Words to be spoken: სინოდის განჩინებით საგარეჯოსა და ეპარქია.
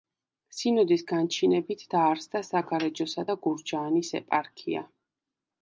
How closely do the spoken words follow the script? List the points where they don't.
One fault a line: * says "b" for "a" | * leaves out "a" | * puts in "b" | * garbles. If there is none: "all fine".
* puts in "დაარსდა"
* puts in "გურჯაანის"